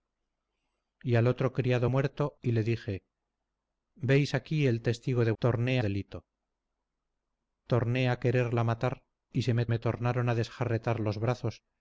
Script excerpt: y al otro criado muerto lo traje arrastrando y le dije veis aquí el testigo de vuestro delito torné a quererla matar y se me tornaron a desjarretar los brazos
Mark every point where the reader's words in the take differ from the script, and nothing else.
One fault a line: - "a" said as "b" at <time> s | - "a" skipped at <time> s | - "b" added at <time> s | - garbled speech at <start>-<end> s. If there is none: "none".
- "lo traje arrastrando" skipped at 2.4 s
- "vuestro" said as "torné" at 5.4 s
- "me" added at 9.7 s